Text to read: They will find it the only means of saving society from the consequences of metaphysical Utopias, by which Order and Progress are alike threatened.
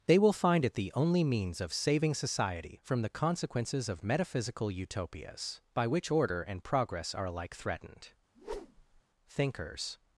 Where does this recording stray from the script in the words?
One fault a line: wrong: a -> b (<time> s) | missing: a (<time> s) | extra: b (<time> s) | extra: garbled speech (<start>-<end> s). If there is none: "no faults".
extra: Thinkers (9.3 s)